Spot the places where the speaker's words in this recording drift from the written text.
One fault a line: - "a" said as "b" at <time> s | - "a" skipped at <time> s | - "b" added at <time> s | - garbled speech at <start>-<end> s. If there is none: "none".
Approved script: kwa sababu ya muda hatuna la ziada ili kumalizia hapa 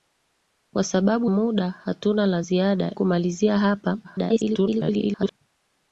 - "ya" skipped at 1.3 s
- "ili" skipped at 2.9 s
- garbled speech at 4.0-5.3 s